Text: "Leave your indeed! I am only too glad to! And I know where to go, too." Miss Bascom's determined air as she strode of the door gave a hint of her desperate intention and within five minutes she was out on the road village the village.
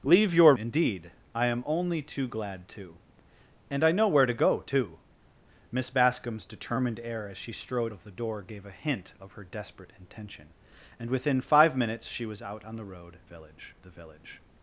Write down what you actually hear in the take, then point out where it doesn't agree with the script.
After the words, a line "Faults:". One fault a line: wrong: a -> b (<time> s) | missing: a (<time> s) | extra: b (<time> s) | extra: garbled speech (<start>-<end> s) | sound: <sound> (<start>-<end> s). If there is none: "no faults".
"Leave your indeed! I am only too glad to! And I know where to go, too." Miss Bascom's determined air as she strode of the door gave a hint of her desperate intention and within five minutes she was out on the road village the village.
Faults:
no faults